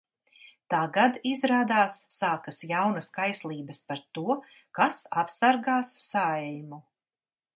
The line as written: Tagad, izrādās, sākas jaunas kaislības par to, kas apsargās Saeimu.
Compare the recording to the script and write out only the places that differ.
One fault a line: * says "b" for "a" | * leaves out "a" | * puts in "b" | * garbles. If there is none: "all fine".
all fine